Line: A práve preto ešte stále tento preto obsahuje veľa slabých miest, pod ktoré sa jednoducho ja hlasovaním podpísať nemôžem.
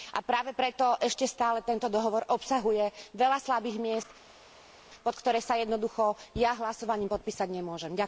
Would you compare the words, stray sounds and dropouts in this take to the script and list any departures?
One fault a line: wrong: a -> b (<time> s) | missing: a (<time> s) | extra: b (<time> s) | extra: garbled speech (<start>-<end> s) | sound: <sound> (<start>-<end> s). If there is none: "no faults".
wrong: preto -> dohovor (1.9 s)